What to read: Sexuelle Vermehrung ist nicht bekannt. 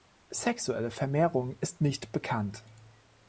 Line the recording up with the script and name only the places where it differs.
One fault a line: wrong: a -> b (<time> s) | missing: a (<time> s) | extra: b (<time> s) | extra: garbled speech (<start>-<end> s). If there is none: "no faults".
no faults